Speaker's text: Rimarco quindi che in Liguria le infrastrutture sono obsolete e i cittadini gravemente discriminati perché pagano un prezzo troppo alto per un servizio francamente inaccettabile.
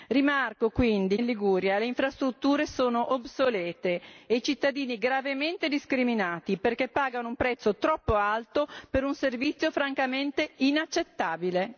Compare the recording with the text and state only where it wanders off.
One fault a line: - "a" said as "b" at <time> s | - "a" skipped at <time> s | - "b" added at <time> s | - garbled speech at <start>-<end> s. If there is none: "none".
- "che" skipped at 1.2 s